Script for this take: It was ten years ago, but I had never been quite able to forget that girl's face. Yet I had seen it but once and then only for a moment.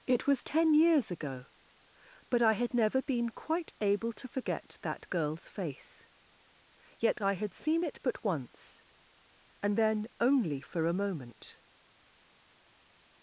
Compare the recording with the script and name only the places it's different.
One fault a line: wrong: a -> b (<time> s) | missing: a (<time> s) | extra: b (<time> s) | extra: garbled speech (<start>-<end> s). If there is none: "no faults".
no faults